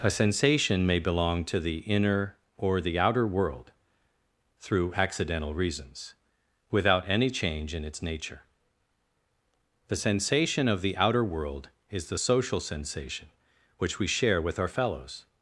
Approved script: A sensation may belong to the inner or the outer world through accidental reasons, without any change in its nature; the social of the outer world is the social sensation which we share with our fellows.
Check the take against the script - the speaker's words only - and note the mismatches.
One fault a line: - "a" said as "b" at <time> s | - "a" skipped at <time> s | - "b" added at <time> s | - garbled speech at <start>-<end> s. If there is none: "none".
- "social" said as "sensation" at 9.9 s